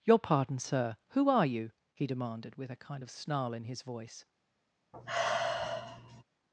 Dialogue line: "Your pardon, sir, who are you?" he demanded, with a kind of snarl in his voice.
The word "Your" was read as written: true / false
true